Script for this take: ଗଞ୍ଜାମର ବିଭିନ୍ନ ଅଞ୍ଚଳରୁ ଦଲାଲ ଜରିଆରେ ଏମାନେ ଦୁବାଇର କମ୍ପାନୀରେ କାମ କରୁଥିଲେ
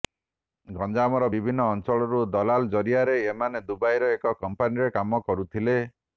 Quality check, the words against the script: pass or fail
fail